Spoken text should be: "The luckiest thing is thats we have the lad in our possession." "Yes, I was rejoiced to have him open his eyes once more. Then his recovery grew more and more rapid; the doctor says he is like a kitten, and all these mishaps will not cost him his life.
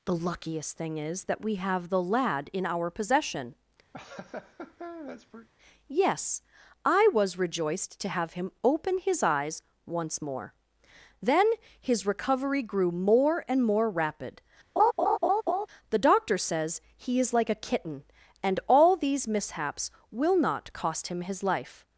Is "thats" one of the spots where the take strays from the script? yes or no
yes